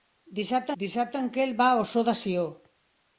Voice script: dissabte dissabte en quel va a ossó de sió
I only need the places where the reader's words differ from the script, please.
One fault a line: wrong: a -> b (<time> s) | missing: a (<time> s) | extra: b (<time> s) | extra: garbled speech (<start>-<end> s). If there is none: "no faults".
no faults